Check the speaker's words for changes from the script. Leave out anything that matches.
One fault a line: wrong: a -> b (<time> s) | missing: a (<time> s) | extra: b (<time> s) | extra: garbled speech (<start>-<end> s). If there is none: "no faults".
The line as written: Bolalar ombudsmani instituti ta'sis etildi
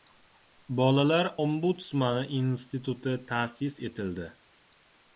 no faults